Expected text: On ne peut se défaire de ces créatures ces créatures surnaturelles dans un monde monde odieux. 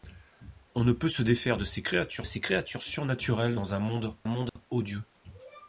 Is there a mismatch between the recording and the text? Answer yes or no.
no